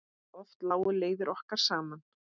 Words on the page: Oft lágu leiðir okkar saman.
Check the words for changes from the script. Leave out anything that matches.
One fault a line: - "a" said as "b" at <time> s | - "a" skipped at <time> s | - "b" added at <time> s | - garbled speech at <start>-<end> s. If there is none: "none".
none